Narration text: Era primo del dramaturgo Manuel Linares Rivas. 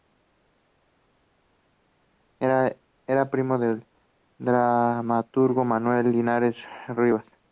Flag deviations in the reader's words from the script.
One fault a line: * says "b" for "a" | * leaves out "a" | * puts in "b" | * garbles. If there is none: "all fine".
all fine